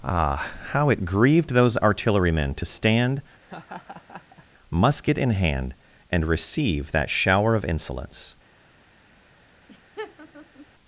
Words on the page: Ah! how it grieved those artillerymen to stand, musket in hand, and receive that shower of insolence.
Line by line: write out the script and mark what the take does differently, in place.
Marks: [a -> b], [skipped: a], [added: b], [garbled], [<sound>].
Ah! how it grieved those artillerymen to stand, [laugh] musket in hand, and receive that shower of insolence. [laugh]